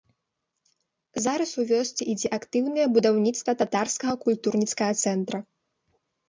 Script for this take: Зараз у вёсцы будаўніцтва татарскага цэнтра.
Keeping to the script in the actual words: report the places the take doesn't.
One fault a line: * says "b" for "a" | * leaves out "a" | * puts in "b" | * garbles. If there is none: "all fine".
* puts in "ідзе актыўнае"
* puts in "культурніцкага"